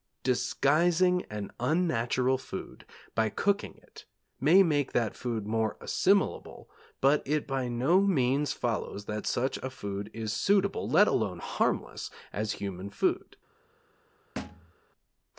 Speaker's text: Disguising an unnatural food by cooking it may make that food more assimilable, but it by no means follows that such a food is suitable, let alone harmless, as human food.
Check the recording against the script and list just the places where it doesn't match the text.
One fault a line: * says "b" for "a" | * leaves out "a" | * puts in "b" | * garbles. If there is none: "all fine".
all fine